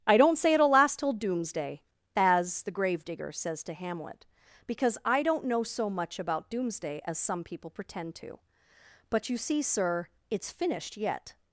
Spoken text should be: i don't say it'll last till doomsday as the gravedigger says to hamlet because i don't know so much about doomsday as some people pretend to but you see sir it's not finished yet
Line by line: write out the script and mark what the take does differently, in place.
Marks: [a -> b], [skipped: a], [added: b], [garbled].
i don't say it'll last till doomsday as the gravedigger says to hamlet because i don't know so much about doomsday as some people pretend to but you see sir it's [skipped: not] finished yet